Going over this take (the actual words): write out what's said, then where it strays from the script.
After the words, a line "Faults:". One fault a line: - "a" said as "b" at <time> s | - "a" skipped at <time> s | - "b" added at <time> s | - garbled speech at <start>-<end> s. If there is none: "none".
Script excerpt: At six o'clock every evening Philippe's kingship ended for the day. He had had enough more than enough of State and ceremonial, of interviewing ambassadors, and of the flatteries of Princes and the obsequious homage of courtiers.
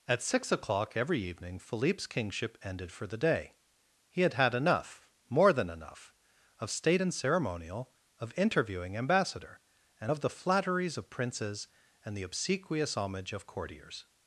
At six o'clock every evening Philippe's kingship ended for the day. He had had enough more than enough of State and ceremonial, of interviewing ambassador, and of the flatteries of Princes and the obsequious homage of courtiers.
Faults:
- "ambassadors" said as "ambassador" at 9.0 s